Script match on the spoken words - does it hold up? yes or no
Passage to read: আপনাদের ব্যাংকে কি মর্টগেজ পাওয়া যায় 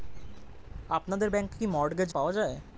yes